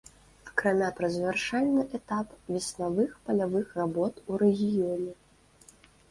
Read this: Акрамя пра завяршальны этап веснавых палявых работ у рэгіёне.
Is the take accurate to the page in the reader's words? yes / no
yes